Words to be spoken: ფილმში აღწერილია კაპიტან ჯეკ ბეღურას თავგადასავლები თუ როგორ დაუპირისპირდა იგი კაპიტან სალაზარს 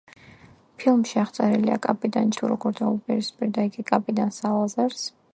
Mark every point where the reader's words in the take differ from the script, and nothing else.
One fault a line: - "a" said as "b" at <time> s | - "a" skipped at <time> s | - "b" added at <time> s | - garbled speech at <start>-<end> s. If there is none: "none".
- "ჯეკ ბეღურას თავგადასავლები" skipped at 2.3 s